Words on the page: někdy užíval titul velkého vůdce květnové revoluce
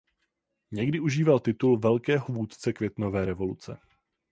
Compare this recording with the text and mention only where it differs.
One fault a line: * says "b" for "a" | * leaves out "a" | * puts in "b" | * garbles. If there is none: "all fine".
all fine